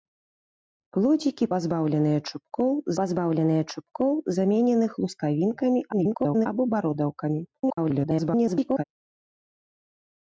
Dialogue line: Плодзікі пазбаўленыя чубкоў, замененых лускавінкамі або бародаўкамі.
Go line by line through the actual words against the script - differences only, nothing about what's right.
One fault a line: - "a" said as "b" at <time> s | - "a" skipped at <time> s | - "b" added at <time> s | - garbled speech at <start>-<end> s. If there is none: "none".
- "пазбаўленыя чубкоў" added at 3.0 s
- garbled speech at 5.9-6.5 s
- garbled speech at 7.5-8.8 s